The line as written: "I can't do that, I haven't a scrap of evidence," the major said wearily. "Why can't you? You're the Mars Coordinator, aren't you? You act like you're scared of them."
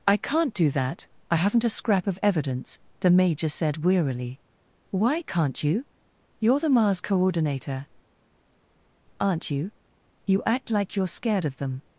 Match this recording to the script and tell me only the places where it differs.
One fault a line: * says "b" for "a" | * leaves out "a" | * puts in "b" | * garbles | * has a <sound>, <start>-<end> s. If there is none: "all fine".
all fine